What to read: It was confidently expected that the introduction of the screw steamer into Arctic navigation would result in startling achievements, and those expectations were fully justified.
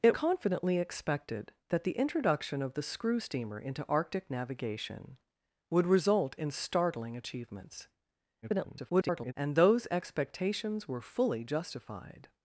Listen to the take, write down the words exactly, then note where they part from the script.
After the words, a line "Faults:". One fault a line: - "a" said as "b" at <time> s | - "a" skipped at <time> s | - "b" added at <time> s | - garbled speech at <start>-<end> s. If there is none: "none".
It confidently expected that the introduction of the screw steamer into Arctic navigation would result in startling achievements, [garbled] and those expectations were fully justified.
Faults:
- "was" skipped at 0.1 s
- garbled speech at 8.4-9.3 s